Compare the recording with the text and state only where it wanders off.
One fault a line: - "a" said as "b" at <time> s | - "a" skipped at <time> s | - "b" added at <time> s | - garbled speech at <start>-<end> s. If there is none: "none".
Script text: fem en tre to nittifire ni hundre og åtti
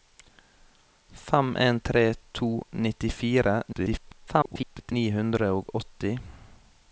- garbled speech at 3.7-4.9 s